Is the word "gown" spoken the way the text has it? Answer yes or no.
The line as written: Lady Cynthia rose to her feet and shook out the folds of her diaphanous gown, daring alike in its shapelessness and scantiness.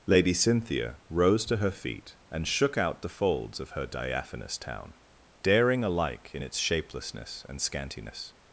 no